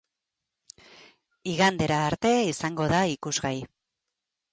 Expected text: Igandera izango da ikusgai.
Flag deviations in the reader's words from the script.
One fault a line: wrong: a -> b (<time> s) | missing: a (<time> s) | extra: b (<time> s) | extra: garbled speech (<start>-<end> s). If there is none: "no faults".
extra: arte (2.0 s)